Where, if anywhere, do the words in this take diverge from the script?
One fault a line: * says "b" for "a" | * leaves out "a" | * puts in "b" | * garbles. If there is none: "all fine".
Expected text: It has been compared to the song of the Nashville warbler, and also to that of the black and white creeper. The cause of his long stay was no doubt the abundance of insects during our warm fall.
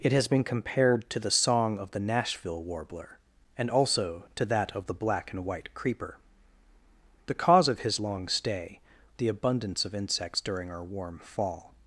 * leaves out "was no doubt"